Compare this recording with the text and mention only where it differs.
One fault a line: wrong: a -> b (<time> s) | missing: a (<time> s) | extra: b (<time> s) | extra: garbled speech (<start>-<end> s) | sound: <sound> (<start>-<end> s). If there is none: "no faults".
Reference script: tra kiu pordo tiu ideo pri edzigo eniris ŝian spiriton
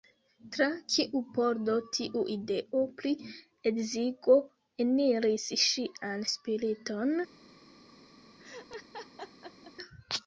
sound: laugh (8.4-9.7 s)